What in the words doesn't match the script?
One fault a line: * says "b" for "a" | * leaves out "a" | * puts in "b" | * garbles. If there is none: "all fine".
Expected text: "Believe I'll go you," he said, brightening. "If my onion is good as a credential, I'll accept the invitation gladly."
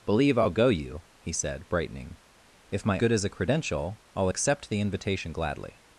* leaves out "onion is"